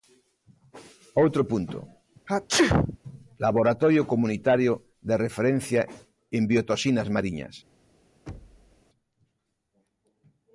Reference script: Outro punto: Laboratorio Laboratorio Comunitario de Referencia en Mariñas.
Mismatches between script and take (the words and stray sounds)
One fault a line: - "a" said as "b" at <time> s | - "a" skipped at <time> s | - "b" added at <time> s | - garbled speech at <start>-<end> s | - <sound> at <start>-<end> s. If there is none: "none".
- sneeze at 2.3-3.0 s
- "Laboratorio" skipped at 4.0 s
- "Biotoxinas" added at 6.5 s
- thud at 8.3-8.8 s